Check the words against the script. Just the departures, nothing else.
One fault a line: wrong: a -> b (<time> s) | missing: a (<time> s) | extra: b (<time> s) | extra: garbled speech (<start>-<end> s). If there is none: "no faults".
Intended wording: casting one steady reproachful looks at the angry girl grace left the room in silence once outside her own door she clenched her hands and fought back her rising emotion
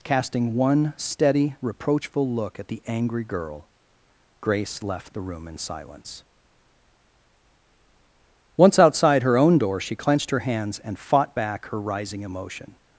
wrong: looks -> look (2.3 s)